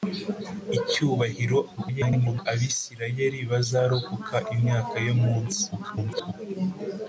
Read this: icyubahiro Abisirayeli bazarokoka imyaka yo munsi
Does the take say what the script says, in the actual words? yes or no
no